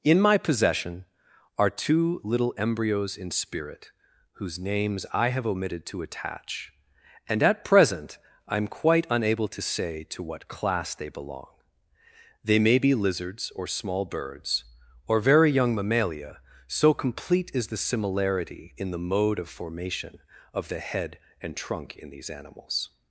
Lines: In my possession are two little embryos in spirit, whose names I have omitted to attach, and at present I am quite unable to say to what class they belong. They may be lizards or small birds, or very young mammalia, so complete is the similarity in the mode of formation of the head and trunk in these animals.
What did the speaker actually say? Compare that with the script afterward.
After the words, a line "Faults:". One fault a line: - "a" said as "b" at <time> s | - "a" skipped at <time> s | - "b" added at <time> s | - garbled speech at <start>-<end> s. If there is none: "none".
In my possession are two little embryos in spirit, whose names I have omitted to attach, and at present I am quite unable to say to what class they belong. They may be lizards or small birds, or very young mammalia, so complete is the similarity in the mode of formation of the head and trunk in these animals.
Faults:
none